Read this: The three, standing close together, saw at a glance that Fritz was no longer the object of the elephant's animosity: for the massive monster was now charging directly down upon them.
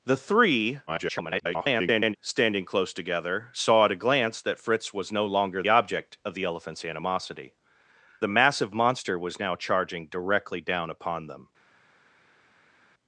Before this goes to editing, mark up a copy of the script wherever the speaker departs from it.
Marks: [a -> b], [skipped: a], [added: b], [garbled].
The three, [garbled] standing close together, saw at a glance that Fritz was no longer [skipped: the] object of the elephant's animosity: [skipped: for] the massive monster was now charging directly down upon them.